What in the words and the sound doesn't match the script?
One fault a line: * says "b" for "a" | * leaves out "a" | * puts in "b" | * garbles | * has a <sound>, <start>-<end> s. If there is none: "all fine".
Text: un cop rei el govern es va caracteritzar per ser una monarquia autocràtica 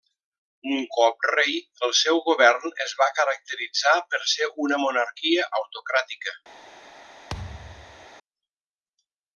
* puts in "seu"
* has a thud, 7.3-8.1 s